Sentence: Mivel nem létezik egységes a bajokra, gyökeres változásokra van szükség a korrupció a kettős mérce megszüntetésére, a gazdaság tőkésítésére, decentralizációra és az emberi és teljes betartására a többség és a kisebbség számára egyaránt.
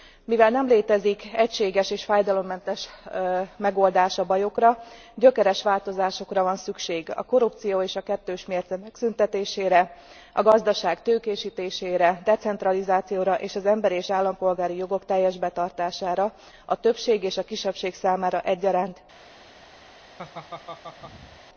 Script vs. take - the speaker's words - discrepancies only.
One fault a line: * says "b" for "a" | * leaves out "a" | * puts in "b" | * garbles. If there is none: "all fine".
* puts in "és fájdalommentes megoldás"
* puts in "és"
* puts in "állampolgári jogok"